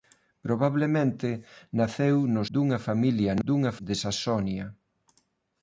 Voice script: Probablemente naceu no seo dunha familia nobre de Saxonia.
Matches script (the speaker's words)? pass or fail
fail